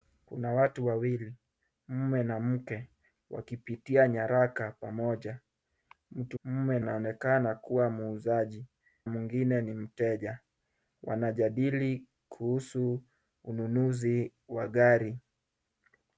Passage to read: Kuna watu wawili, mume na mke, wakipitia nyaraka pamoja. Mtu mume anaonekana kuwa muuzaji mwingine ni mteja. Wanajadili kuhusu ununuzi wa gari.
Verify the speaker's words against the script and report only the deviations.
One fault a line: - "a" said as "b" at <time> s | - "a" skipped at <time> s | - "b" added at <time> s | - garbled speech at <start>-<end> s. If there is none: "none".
none